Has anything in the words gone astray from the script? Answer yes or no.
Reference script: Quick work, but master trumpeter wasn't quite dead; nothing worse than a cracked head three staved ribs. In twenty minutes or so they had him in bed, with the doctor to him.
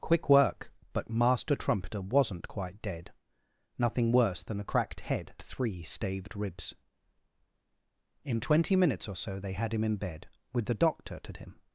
no